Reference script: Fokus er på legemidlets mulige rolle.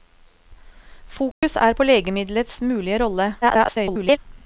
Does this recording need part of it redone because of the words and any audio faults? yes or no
yes